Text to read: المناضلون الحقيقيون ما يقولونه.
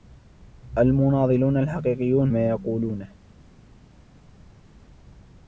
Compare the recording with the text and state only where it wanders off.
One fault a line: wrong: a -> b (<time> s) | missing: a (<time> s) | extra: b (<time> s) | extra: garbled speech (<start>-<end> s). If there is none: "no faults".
no faults